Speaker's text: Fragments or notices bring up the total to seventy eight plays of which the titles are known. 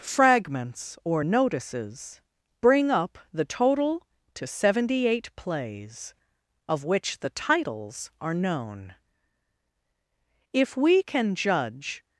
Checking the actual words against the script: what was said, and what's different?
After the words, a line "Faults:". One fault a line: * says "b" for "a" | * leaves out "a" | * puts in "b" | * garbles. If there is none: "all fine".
Fragments or notices bring up the total to seventy eight plays of which the titles are known. If we can judge
Faults:
* puts in "If we can judge"